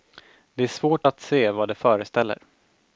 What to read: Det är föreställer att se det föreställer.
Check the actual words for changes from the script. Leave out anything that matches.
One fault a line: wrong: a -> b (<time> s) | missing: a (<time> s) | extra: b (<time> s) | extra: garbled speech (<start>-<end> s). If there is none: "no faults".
wrong: föreställer -> svårt (0.7 s)
extra: vad (1.5 s)